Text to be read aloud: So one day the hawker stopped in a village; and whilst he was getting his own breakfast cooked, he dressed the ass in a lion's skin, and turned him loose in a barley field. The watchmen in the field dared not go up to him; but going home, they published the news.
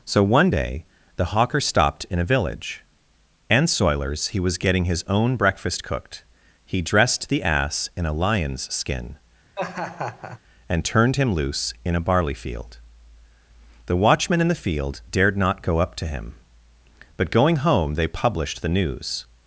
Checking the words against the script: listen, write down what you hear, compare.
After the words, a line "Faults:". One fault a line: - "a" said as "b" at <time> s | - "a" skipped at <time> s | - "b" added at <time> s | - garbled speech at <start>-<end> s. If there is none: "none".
So one day the hawker stopped in a village; and soilers he was getting his own breakfast cooked, he dressed the ass in a lion's skin, and turned him loose in a barley field. The watchmen in the field dared not go up to him; but going home, they published the news.
Faults:
- "whilst" said as "soilers" at 3.7 s